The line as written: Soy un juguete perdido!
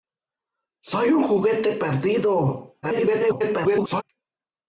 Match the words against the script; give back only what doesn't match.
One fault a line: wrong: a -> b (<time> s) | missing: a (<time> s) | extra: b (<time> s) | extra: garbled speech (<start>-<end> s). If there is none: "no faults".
extra: garbled speech (2.8-4.0 s)